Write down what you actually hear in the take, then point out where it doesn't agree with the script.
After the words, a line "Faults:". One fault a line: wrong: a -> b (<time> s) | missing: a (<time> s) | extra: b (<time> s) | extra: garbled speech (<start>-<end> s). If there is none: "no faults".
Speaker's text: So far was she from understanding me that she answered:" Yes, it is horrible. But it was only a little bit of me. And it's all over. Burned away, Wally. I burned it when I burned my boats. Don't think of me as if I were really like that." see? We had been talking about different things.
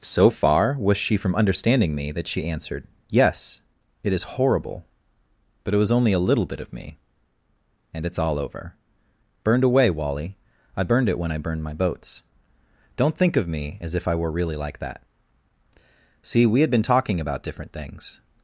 So far was she from understanding me that she answered:" Yes, it is horrible. But it was only a little bit of me. And it's all over. Burned away, Wally. I burned it when I burned my boats. Don't think of me as if I were really like that." see? We had been talking about different things.
Faults:
no faults